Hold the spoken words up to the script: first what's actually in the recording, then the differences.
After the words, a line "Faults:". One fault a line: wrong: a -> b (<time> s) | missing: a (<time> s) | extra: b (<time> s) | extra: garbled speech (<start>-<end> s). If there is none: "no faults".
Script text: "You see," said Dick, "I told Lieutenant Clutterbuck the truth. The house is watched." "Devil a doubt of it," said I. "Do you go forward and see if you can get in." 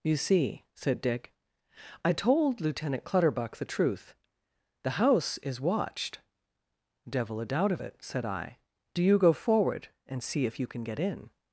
"You see," said Dick, "I told Lieutenant Clutterbuck the truth. The house is watched." "Devil a doubt of it," said I. "Do you go forward and see if you can get in."
Faults:
no faults